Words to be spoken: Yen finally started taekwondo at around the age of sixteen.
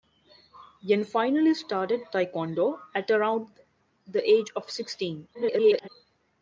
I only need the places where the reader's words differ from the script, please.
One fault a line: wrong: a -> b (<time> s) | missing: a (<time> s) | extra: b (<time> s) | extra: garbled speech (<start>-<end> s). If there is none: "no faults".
extra: garbled speech (5.3-5.9 s)